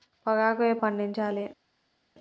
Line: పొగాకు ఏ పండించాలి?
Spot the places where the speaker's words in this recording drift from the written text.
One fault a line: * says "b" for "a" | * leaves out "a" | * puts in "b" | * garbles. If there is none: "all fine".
all fine